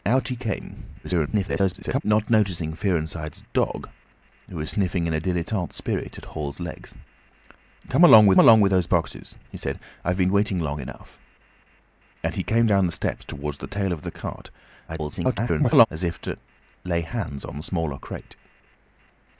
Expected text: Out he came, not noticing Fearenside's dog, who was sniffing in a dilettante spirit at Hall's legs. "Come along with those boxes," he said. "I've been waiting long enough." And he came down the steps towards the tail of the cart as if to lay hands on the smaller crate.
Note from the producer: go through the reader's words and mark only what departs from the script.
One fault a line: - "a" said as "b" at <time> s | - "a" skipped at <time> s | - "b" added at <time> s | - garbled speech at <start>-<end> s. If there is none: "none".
- garbled speech at 1.0-2.0 s
- "along with" added at 8.4 s
- garbled speech at 14.9-15.9 s